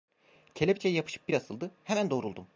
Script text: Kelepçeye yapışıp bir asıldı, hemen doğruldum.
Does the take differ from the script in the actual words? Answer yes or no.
no